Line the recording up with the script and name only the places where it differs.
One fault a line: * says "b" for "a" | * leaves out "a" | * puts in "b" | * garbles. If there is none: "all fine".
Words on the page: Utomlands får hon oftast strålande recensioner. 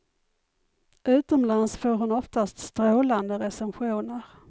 all fine